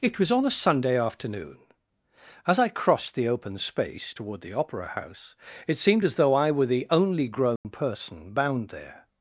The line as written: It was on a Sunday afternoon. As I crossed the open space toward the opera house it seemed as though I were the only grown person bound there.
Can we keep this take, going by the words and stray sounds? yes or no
no